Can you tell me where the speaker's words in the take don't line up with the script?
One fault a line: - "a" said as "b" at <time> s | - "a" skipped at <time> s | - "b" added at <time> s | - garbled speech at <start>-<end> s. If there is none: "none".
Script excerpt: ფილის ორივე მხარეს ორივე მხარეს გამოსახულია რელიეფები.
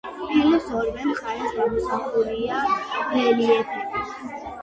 - "ორივე მხარეს" skipped at 1.6 s